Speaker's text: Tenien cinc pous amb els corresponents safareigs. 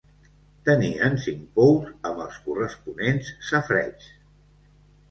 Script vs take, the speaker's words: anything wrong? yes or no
no